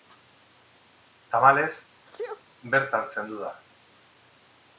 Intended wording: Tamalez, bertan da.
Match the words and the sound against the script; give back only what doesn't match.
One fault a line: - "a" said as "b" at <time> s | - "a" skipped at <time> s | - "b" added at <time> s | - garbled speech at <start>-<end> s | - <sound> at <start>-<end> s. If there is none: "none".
- sneeze at 2.0-2.4 s
- "zendu" added at 3.2 s